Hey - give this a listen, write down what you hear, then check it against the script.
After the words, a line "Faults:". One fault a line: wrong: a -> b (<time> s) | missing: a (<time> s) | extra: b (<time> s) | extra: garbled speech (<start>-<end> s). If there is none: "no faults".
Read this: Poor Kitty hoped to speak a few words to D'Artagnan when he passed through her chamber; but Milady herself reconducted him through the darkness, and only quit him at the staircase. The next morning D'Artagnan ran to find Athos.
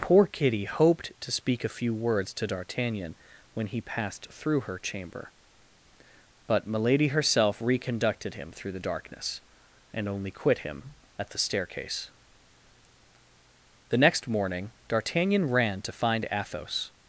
Poor Kitty hoped to speak a few words to D'Artagnan when he passed through her chamber; but Milady herself reconducted him through the darkness, and only quit him at the staircase. The next morning D'Artagnan ran to find Athos.
Faults:
no faults